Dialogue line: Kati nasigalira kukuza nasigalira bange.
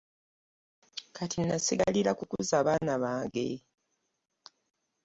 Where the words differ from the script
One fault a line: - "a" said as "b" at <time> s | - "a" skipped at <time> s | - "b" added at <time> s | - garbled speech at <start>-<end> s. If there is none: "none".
- "nasigalira" said as "baana" at 2.7 s